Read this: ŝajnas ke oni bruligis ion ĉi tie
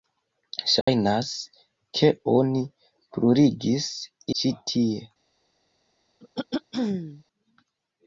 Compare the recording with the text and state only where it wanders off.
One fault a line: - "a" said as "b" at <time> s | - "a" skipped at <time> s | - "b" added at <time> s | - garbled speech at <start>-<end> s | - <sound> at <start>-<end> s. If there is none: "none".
- dropout at 0.8-0.9 s
- "ion" skipped at 3.9 s
- throat clearing at 6.2-7.2 s